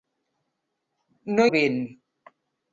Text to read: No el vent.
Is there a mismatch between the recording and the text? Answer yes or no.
no